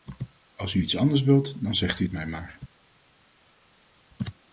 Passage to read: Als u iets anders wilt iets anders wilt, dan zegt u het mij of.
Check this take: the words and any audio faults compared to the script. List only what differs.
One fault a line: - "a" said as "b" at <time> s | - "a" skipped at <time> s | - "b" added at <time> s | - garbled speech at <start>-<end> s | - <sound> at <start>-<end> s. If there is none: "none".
- "iets anders wilt" skipped at 1.6 s
- "of" said as "maar" at 2.3 s